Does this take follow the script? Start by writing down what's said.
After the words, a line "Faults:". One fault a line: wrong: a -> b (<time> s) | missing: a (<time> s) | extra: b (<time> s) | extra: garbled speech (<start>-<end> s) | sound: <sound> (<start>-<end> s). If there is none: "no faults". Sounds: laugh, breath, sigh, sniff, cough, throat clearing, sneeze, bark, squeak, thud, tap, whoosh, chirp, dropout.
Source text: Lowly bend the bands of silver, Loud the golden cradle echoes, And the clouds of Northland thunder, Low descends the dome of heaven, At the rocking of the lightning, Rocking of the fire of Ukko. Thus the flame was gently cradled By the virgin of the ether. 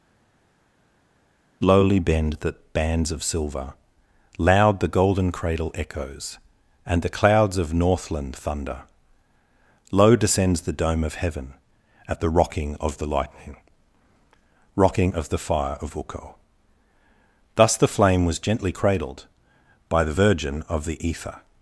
Lowly bend the bands of silver, Loud the golden cradle echoes, And the clouds of Northland thunder, Low descends the dome of heaven, At the rocking of the lightning, Rocking of the fire of Ukko. Thus the flame was gently cradled By the virgin of the ether.
Faults:
no faults